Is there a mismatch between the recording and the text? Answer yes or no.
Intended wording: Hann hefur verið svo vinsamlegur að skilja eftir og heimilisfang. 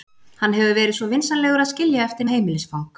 no